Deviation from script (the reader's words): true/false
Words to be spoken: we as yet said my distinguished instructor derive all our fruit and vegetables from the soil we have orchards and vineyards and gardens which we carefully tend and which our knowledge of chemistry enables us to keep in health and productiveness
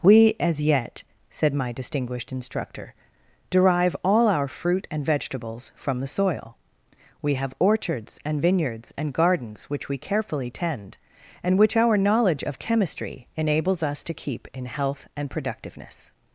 false